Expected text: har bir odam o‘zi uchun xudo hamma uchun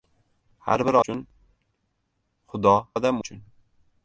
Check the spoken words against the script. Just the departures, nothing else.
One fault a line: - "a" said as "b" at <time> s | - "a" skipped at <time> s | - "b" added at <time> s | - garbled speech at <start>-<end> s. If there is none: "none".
- "odam o‘zi" skipped at 1.0 s
- "hamma" said as "odam" at 2.9 s